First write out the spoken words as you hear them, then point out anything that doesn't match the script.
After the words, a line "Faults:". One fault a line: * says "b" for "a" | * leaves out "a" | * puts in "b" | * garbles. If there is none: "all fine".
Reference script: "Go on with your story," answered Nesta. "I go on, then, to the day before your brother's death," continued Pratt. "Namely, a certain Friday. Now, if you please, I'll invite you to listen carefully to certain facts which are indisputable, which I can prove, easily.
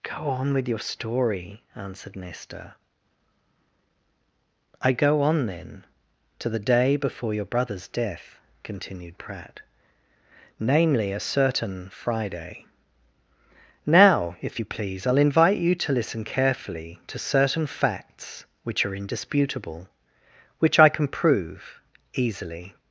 "Go on with your story," answered Nesta. "I go on, then, to the day before your brother's death," continued Pratt. "Namely, a certain Friday. Now, if you please, I'll invite you to listen carefully to certain facts which are indisputable, which I can prove, easily.
Faults:
all fine